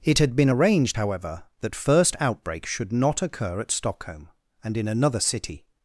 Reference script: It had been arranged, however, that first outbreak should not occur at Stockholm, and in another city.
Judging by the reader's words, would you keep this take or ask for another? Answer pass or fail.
pass